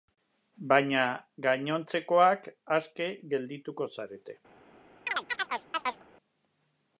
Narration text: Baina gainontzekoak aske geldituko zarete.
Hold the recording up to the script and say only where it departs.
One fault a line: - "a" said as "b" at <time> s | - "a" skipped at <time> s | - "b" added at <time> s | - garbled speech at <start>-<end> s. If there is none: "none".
none